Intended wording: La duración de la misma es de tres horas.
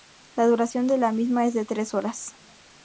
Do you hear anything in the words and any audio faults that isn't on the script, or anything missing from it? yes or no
no